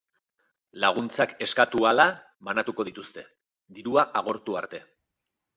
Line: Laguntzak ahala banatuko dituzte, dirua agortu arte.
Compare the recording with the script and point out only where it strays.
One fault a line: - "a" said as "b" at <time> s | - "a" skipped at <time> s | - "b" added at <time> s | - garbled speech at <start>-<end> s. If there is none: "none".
- "eskatu" added at 1.5 s